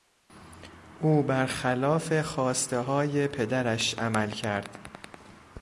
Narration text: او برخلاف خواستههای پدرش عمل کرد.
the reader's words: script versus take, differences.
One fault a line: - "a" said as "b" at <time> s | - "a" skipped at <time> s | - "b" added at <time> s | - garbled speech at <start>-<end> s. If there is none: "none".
none